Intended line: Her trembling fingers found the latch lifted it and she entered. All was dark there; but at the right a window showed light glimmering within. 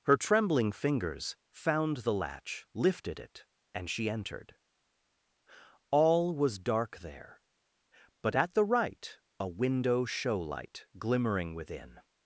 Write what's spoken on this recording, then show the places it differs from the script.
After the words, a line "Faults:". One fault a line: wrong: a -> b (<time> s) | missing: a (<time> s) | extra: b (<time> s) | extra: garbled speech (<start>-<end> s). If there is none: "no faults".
Her trembling fingers found the latch lifted it and she entered. All was dark there; but at the right a window show light glimmering within.
Faults:
wrong: showed -> show (10.1 s)